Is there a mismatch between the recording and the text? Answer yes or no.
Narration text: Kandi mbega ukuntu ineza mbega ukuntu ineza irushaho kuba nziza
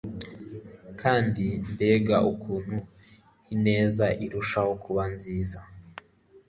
yes